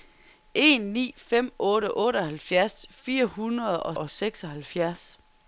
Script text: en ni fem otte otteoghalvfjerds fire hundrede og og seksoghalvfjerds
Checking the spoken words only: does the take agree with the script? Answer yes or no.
yes